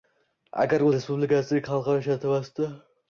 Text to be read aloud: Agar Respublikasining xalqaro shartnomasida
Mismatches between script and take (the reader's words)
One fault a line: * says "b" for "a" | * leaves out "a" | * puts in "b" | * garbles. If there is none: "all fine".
all fine